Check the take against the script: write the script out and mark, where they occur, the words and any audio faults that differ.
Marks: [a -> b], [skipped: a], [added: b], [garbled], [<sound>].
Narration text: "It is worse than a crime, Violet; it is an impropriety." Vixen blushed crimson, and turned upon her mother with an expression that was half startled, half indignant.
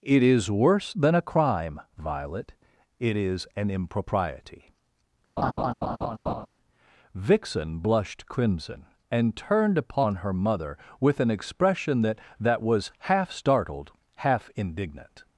"It is worse than a crime, Violet; it is an impropriety." [laugh] Vixen blushed crimson, and turned upon her mother with an expression that [added: that] was half startled, half indignant.